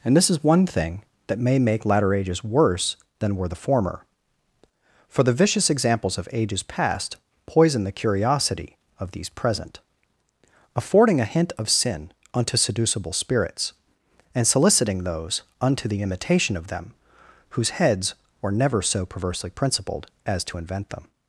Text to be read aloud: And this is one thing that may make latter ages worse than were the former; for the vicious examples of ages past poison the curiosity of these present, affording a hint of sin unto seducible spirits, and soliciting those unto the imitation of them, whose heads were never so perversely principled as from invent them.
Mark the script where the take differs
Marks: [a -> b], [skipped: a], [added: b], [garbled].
And this is one thing that may make latter ages worse than were the former; for the vicious examples of ages past poison the curiosity of these present, affording a hint of sin unto seducible spirits, and soliciting those unto the imitation of them, whose heads were never so perversely principled as [from -> to] invent them.